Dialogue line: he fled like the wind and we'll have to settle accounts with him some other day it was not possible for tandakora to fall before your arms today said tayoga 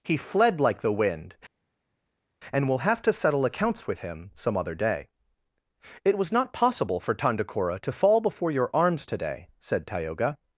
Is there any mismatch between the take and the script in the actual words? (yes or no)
no